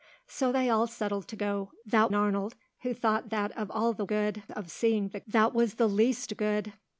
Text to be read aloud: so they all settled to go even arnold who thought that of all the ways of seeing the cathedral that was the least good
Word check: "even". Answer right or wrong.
wrong